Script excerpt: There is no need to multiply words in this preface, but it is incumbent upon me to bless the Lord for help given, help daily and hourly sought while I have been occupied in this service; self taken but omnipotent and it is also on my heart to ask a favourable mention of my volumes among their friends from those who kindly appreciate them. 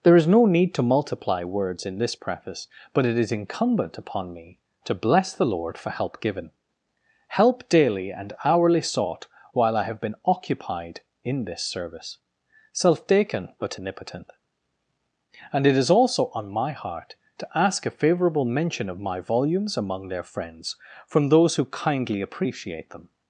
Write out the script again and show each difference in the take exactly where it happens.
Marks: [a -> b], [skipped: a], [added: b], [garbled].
There is no need to multiply words in this preface, but it is incumbent upon me to bless the Lord for help given, help daily and hourly sought while I have been occupied in this service; self taken but omnipotent and it is also on my heart to ask a favourable mention of my volumes among their friends from those who kindly appreciate them.